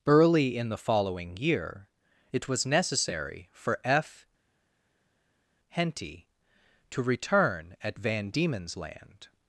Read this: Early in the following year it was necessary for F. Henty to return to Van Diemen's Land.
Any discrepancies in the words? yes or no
yes